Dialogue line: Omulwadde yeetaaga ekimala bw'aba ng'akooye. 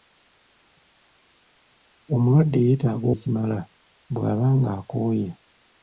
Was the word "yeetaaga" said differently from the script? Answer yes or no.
no